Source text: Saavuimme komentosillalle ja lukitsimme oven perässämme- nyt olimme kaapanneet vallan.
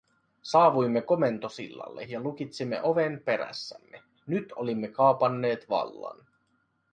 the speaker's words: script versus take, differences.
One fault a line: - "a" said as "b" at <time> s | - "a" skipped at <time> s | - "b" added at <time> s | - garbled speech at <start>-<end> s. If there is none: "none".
none